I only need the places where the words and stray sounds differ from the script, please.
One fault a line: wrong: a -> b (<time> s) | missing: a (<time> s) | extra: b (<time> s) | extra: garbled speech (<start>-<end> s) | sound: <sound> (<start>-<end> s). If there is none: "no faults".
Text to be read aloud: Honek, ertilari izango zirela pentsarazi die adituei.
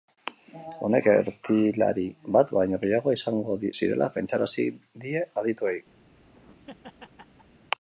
extra: bat baino gehiago (2.4 s)
sound: laugh (6.0-7.6 s)